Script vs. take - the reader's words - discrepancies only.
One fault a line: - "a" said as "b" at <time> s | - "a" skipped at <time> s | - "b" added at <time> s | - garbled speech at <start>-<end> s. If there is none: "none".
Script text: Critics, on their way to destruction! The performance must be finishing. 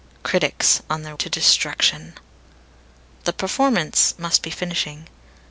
- "way" skipped at 1.1 s